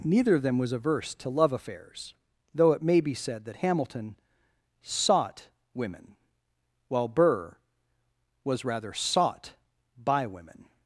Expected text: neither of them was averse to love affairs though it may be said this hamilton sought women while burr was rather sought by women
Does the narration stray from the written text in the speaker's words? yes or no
yes